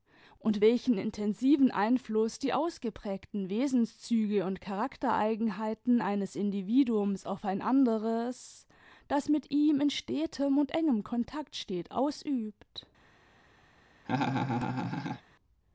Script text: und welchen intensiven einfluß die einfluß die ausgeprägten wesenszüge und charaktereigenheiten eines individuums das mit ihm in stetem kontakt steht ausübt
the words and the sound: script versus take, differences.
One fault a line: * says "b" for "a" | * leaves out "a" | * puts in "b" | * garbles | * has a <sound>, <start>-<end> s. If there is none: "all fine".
* leaves out "einfluß die"
* puts in "auf ein anderes"
* puts in "und engem"
* has a laugh, 14.1-15.2 s